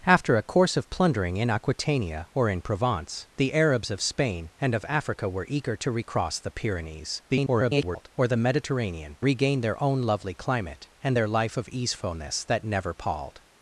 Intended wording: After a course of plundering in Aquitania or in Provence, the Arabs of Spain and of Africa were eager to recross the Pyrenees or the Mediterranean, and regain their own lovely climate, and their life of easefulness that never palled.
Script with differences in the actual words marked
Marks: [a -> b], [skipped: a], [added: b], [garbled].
After a course of plundering in Aquitania or in Provence, the Arabs of Spain and of Africa were eager to recross the Pyrenees [garbled] or the Mediterranean, [skipped: and] regain their own lovely climate, and their life of easefulness that never palled.